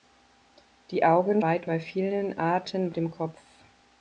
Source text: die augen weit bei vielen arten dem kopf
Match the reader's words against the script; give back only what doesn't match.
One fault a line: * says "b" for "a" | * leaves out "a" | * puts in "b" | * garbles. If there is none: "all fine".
all fine